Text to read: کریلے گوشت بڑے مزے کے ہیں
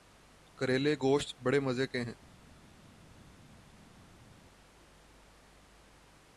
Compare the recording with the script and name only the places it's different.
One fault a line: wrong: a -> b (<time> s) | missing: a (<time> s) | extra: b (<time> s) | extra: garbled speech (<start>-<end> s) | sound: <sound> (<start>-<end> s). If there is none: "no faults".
no faults